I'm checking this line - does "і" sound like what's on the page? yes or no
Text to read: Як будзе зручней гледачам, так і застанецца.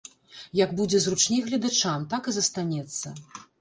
yes